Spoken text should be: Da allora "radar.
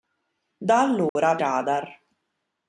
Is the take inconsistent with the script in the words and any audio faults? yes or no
yes